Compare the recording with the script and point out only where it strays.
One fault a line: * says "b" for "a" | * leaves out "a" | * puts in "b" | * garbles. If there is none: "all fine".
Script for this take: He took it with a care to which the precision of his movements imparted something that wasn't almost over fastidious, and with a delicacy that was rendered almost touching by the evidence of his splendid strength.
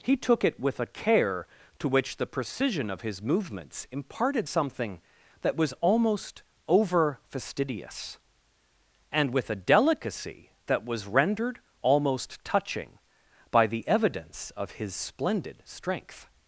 * says "was" for "wasn't"